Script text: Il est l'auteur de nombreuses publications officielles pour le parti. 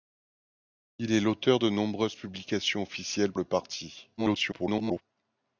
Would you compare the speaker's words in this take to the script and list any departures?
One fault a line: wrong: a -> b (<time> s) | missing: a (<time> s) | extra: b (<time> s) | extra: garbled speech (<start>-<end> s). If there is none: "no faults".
missing: pour (3.3 s)
extra: garbled speech (4.2-5.0 s)